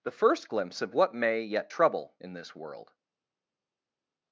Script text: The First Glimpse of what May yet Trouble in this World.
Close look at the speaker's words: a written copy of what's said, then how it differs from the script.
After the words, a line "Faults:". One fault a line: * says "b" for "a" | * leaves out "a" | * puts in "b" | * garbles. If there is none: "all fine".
The First Glimpse of what May yet Trouble in this World.
Faults:
all fine